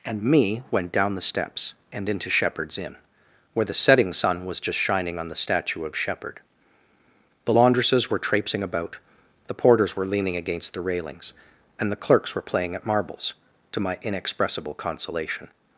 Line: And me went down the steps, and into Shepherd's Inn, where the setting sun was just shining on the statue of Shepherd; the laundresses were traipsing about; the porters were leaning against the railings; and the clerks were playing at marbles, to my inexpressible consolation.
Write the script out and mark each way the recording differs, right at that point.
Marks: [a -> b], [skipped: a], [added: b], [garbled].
And me went down the steps, and into Shepherd's Inn, where the setting sun was just shining on the statue of Shepherd; the laundresses were traipsing about; the porters were leaning against the railings; and the clerks were playing at marbles, to my inexpressible consolation.